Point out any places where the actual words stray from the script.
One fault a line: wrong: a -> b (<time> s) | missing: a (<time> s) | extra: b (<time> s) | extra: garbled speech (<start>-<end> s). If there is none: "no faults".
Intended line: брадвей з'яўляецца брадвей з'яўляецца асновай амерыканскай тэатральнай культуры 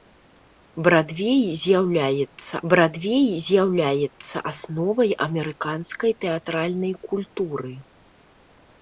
no faults